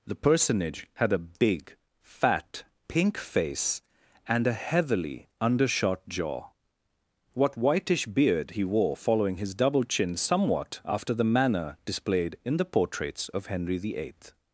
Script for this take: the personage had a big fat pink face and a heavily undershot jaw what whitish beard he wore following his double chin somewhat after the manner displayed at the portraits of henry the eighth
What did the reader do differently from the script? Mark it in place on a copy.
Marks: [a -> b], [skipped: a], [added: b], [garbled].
the personage had a big fat pink face and a heavily undershot jaw what whitish beard he wore following his double chin somewhat after the manner displayed [at -> in] the portraits of henry the eighth